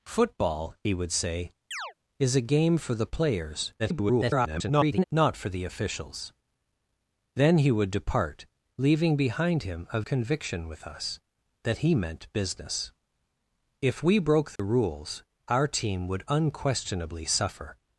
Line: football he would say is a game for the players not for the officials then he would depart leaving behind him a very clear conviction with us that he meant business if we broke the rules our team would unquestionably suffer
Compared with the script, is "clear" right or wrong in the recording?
wrong